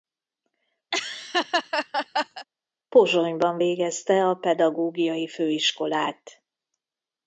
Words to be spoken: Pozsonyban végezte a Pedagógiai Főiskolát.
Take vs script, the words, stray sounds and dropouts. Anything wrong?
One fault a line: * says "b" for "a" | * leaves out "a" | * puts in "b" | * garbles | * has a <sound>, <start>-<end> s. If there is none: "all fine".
* has a laugh, 0.9-2.5 s